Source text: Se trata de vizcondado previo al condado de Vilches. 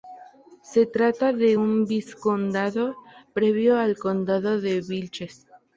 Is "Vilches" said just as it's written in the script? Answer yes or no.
yes